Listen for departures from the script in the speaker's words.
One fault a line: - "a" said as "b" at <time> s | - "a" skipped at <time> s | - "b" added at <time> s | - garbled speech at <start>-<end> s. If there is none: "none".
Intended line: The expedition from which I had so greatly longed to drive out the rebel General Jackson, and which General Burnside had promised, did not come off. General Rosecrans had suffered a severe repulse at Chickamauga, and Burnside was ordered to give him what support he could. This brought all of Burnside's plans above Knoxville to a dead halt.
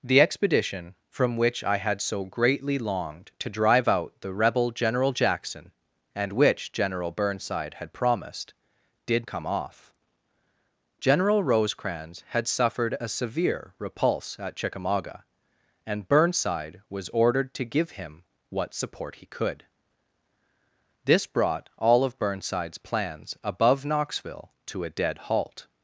- "not" skipped at 9.3 s